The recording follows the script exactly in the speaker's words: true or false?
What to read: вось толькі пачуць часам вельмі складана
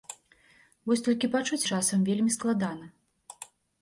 true